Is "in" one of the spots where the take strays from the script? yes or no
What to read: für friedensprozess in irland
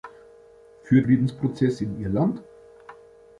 no